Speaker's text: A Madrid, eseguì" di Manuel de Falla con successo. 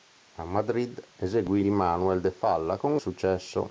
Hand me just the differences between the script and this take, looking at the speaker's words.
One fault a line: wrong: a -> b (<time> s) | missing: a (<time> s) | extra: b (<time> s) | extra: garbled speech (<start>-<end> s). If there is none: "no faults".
no faults